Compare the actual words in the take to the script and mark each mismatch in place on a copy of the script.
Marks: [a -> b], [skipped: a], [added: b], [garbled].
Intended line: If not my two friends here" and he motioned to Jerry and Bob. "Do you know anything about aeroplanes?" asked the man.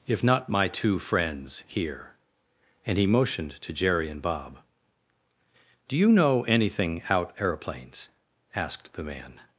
If not my two friends here" and he motioned to Jerry and Bob. "Do you know anything [about -> out] aeroplanes?" asked the man.